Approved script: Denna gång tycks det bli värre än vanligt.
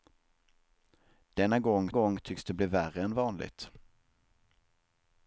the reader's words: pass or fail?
fail